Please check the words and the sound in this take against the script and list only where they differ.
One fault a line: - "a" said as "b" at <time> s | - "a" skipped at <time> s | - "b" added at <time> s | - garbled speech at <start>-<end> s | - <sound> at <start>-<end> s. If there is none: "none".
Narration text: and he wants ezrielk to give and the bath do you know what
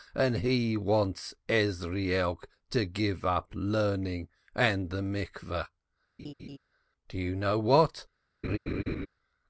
- "up learning" added at 3.2 s
- laugh at 6.2-6.6 s
- laugh at 8.4-9.1 s